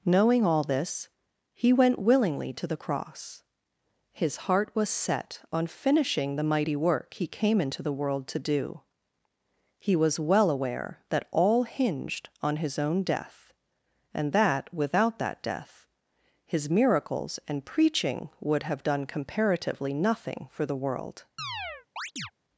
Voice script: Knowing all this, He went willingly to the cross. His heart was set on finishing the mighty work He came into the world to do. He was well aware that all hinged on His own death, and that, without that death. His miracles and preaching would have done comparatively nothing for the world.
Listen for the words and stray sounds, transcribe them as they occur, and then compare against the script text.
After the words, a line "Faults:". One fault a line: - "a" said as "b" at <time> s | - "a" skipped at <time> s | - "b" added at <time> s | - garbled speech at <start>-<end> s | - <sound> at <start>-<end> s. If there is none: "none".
Knowing all this, He went willingly to the cross. His heart was set on finishing the mighty work He came into the world to do. He was well aware that all hinged on His own death, and that, without that death. His miracles and preaching would have done comparatively nothing for the world.
Faults:
- chirp at 21.4-22.3 s